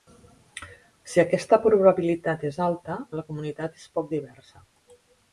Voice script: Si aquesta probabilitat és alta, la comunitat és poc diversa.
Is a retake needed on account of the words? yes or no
no